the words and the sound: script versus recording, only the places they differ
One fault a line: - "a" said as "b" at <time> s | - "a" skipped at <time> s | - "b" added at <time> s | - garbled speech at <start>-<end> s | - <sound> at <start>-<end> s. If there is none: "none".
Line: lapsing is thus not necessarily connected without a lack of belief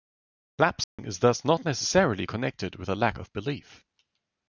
- dropout at 0.8-1.0 s
- "without" said as "with" at 2.8 s